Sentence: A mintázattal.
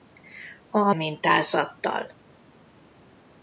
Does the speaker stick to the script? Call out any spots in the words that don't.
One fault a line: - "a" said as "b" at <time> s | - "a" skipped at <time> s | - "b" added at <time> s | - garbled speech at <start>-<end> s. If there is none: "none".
none